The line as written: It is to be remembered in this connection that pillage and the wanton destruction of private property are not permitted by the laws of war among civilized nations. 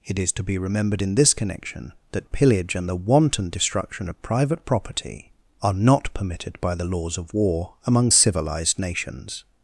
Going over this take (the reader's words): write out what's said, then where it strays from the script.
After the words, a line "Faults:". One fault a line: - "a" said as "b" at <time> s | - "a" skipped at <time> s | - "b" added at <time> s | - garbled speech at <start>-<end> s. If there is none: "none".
It is to be remembered in this connection that pillage and the wanton destruction of private property are not permitted by the laws of war among civilized nations.
Faults:
none